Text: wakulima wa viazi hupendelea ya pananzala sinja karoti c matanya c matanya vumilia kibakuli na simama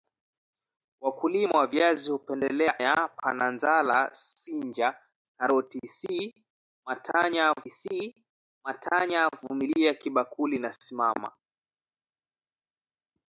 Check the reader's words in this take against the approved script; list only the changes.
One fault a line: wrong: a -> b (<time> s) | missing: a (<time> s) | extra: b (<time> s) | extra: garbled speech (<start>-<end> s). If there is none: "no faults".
no faults